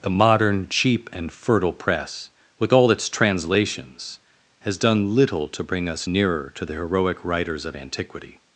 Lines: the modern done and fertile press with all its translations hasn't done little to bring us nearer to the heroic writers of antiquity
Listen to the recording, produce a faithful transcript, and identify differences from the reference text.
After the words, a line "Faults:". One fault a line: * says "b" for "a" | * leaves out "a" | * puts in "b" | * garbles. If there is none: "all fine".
the modern cheap and fertile press with all its translations has done little to bring us nearer to the heroic writers of antiquity
Faults:
* says "cheap" for "done"
* says "has" for "hasn't"